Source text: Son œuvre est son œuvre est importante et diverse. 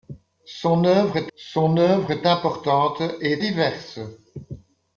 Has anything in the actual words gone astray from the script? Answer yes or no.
no